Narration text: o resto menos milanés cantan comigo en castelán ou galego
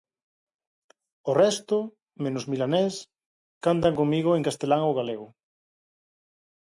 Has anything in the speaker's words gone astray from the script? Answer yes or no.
no